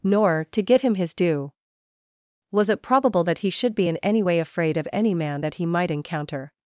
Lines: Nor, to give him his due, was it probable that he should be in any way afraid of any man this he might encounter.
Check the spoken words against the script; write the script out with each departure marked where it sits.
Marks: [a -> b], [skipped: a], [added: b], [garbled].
Nor, to give him his due, was it probable that he should be in any way afraid of any man [this -> that] he might encounter.